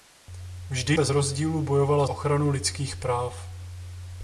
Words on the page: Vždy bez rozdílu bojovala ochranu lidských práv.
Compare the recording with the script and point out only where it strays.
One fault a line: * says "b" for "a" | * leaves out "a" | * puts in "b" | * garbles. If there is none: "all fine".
all fine